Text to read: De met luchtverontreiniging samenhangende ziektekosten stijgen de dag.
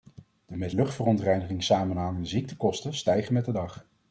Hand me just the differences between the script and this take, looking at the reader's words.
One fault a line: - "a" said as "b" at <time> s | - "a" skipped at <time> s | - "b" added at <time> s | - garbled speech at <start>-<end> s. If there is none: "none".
- "met" added at 3.3 s